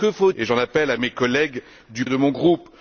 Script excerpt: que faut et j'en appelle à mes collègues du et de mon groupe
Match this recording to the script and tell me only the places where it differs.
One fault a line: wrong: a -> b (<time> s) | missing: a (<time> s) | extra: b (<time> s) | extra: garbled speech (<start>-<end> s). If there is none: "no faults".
no faults